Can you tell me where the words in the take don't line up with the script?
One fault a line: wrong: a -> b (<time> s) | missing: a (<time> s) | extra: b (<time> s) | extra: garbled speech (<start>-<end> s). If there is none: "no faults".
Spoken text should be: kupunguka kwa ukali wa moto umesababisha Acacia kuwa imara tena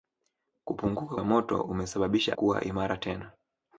missing: kwa ukali (1.2 s)
missing: Acacia (2.4 s)